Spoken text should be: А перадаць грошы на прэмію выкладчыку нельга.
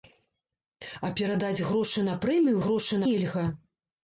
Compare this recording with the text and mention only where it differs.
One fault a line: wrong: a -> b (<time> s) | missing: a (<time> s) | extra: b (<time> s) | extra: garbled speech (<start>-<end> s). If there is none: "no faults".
wrong: выкладчыку -> грошы (2.6 s)